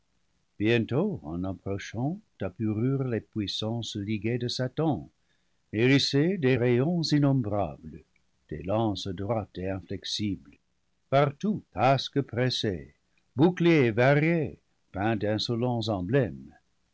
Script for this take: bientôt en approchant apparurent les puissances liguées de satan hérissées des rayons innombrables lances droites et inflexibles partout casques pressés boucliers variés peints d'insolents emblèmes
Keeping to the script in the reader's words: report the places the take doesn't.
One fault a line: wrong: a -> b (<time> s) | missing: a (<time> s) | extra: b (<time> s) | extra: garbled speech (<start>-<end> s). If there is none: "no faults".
extra: des (8.5 s)